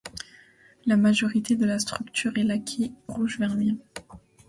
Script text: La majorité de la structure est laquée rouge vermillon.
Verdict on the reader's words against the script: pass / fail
pass